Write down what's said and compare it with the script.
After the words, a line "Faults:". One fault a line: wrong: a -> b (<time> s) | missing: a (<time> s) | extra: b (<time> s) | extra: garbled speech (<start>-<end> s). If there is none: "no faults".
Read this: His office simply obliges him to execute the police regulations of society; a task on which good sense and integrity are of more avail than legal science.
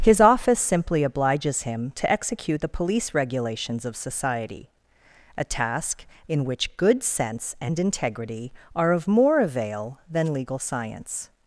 His office simply obliges him to execute the police regulations of society; a task in which good sense and integrity are of more avail than legal science.
Faults:
wrong: on -> in (6.3 s)